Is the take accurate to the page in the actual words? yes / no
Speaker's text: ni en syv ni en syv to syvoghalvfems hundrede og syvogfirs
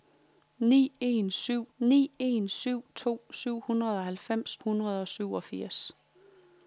yes